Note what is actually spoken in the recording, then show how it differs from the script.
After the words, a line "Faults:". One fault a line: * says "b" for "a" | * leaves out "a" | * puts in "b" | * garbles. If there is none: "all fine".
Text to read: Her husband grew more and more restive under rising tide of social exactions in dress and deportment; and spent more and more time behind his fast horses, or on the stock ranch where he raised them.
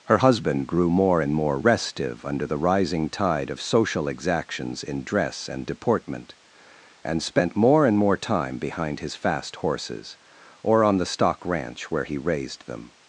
Her husband grew more and more restive under the rising tide of social exactions in dress and deportment; and spent more and more time behind his fast horses, or on the stock ranch where he raised them.
Faults:
* puts in "the"